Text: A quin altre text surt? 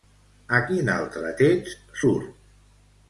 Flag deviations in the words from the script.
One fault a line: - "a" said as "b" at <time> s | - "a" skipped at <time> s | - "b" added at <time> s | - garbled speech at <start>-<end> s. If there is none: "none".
none